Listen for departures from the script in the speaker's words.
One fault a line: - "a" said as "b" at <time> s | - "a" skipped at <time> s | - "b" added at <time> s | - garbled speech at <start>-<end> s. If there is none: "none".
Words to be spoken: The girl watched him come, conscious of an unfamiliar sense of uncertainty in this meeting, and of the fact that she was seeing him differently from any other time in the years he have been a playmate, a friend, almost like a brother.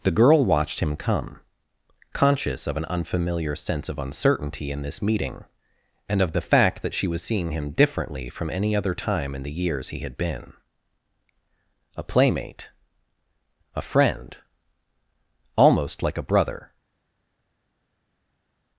- "have" said as "had" at 10.0 s